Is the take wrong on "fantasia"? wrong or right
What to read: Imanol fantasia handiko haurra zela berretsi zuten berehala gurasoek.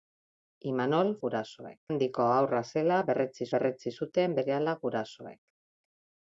wrong